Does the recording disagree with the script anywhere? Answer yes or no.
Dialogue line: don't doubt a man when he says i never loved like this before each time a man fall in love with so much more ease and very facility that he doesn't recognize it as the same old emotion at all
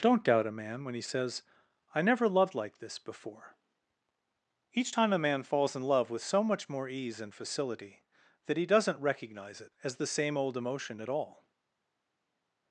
yes